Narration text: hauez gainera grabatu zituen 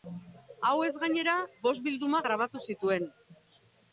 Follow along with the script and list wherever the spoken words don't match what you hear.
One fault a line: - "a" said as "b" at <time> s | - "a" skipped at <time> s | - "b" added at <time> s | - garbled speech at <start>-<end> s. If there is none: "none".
- "bost bilduma" added at 1.7 s